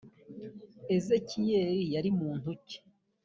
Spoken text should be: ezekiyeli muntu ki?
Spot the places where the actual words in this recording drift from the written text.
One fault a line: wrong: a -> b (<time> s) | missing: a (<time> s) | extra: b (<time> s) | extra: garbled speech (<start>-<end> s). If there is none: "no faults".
extra: yari (1.9 s)